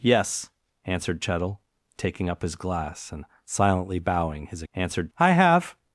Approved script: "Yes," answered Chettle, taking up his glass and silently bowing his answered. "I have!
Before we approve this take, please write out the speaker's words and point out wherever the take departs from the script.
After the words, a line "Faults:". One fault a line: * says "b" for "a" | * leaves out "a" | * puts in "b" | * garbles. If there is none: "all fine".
"Yes," answered Chettle, taking up his glass and silently bowing his answered. "I have!
Faults:
all fine